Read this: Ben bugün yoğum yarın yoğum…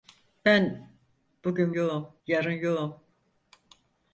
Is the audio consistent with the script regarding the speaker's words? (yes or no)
yes